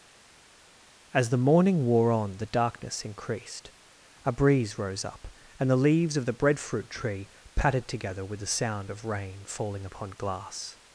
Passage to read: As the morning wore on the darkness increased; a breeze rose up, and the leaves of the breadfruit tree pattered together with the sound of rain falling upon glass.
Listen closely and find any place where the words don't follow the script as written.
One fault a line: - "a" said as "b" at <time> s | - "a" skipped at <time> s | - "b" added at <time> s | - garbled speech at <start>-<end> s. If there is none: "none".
none